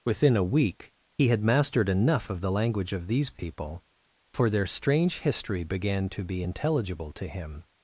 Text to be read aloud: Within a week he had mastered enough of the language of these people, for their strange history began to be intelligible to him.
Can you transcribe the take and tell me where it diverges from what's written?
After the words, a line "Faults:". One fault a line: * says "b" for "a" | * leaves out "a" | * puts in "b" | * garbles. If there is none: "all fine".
Within a week he had mastered enough of the language of these people, for their strange history began to be intelligible to him.
Faults:
all fine